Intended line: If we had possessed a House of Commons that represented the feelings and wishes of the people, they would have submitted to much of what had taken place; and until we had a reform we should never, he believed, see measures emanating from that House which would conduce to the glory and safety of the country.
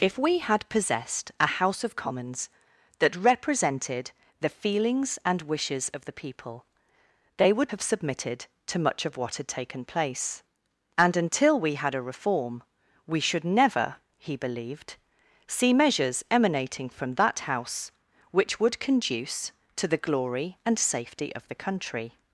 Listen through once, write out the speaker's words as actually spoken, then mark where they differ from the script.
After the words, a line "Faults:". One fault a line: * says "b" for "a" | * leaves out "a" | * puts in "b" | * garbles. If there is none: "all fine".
If we had possessed a House of Commons that represented the feelings and wishes of the people, they would have submitted to much of what had taken place; and until we had a reform we should never, he believed, see measures emanating from that House which would conduce to the glory and safety of the country.
Faults:
all fine